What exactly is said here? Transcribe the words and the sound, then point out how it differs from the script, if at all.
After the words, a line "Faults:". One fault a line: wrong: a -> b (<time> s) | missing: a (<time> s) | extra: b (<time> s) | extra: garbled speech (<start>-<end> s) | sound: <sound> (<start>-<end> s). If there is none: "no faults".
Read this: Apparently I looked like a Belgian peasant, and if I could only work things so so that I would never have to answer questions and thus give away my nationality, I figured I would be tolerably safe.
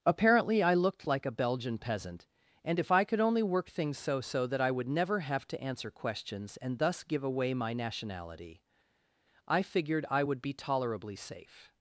Apparently I looked like a Belgian peasant, and if I could only work things so so that I would never have to answer questions and thus give away my nationality, I figured I would be tolerably safe.
Faults:
no faults